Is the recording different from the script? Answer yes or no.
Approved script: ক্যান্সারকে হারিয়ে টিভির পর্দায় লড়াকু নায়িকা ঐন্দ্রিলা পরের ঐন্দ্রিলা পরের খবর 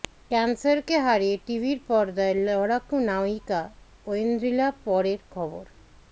yes